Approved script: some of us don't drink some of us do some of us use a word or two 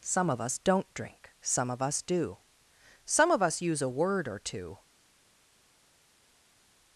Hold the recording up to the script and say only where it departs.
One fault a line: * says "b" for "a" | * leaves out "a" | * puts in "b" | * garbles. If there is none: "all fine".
all fine